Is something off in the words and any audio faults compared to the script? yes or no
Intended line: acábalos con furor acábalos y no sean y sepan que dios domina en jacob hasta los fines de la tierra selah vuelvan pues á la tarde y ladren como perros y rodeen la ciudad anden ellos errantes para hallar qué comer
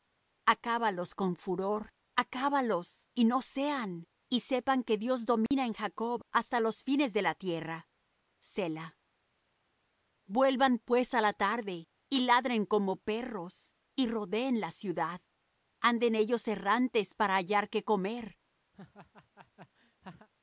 yes